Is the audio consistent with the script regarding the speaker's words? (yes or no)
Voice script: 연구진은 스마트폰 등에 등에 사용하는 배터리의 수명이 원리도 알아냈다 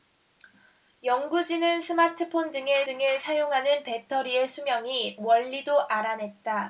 yes